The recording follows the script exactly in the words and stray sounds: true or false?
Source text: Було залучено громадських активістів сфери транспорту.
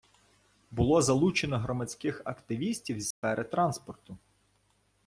false